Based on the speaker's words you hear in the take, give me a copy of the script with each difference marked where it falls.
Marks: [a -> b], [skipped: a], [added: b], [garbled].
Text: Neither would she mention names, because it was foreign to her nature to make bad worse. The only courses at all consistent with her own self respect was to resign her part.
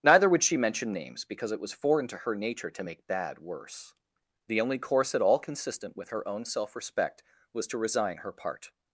Neither would she mention names, because it was foreign to her nature to make bad worse. The only [courses -> course] at all consistent with her own self respect was to resign her part.